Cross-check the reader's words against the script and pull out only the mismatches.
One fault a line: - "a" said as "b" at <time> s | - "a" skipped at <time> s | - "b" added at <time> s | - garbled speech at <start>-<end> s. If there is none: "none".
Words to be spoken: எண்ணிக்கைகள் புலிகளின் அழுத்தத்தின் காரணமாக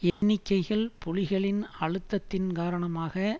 none